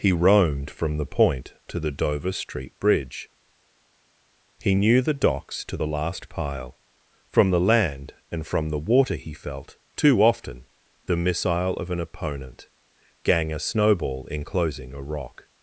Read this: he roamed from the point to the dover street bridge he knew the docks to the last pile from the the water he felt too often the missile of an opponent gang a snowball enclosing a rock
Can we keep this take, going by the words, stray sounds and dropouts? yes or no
no